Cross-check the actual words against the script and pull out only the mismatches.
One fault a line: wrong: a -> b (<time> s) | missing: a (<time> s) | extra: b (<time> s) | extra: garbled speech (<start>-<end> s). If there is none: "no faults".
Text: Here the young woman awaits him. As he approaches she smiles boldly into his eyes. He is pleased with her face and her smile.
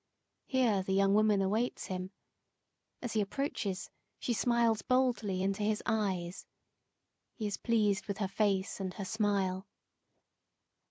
no faults